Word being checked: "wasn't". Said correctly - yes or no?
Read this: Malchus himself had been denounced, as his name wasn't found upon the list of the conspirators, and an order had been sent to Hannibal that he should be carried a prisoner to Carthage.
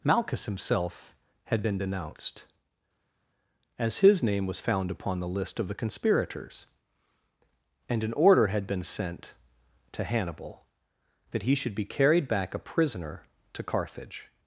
no